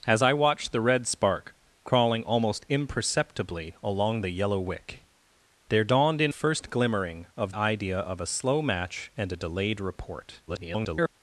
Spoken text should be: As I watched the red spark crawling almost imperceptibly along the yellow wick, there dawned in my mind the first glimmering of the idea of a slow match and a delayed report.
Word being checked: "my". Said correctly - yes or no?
no